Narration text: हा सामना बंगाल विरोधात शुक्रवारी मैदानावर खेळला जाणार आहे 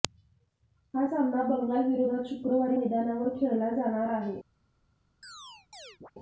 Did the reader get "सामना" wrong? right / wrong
right